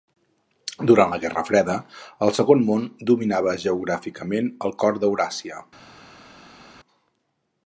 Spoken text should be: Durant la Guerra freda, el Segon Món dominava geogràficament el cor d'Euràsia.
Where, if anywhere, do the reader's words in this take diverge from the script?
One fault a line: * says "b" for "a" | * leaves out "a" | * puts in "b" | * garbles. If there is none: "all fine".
all fine